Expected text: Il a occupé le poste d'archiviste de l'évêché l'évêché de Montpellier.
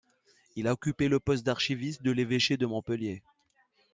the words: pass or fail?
fail